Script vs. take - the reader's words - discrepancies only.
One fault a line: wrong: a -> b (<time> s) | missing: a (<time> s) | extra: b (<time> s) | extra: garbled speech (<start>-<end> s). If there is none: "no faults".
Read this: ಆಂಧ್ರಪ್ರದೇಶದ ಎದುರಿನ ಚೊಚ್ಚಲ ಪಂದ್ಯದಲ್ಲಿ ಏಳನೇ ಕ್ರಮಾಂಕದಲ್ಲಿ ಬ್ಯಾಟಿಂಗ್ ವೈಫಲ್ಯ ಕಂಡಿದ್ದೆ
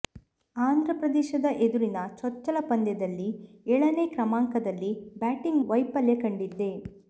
no faults